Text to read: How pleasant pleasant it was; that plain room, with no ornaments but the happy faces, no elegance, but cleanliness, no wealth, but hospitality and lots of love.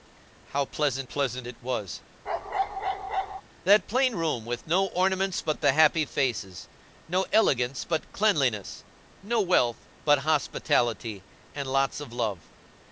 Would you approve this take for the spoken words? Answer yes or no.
yes